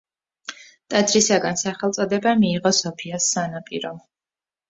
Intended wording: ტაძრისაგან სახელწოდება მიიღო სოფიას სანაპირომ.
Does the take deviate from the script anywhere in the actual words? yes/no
no